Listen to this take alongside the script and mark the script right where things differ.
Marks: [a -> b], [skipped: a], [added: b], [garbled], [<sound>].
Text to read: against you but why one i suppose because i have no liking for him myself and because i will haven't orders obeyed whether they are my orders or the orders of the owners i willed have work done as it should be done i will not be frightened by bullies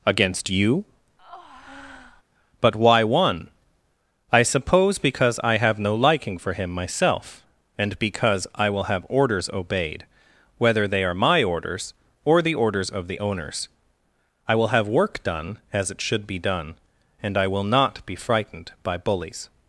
against you [breath] but why one i suppose because i have no liking for him myself and because i will [haven't -> have] orders obeyed whether they are my orders or the orders of the owners i [willed -> will] have work done as it should be done [added: and] i will not be frightened by bullies